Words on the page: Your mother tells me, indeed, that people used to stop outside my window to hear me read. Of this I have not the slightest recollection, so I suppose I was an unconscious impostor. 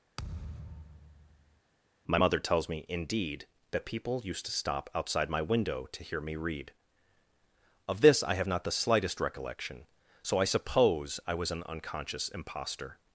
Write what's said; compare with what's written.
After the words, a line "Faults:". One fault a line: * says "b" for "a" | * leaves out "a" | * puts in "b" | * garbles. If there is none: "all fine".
My mother tells me, indeed, that people used to stop outside my window to hear me read. Of this I have not the slightest recollection, so I suppose I was an unconscious impostor.
Faults:
* says "My" for "Your"